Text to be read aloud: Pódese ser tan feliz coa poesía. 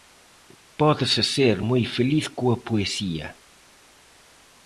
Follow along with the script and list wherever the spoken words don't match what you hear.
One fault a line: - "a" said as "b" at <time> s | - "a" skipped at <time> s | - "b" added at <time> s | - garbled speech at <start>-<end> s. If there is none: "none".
- "tan" said as "moi" at 1.7 s